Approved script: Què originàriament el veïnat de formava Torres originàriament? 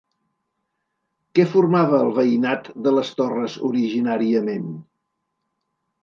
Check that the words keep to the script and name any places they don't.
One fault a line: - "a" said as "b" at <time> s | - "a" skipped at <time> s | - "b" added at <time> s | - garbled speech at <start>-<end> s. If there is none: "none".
- "originàriament" said as "formava" at 1.5 s
- "formava" said as "les" at 3.0 s